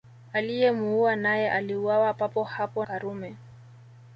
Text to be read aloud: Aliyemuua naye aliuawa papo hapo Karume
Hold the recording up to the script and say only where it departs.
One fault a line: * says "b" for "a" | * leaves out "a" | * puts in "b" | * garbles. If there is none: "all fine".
all fine